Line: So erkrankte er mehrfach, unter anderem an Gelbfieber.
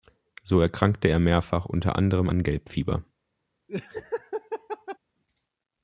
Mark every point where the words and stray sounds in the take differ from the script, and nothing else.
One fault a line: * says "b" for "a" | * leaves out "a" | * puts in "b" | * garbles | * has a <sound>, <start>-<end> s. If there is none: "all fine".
* has a laugh, 3.7-5.0 s